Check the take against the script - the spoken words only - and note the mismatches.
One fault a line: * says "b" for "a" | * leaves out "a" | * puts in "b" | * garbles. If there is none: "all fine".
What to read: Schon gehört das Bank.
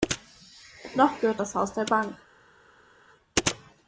* says "Noch" for "Schon"
* puts in "Haus der"